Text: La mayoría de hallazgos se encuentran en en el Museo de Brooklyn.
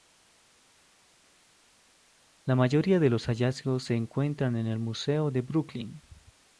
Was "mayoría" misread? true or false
false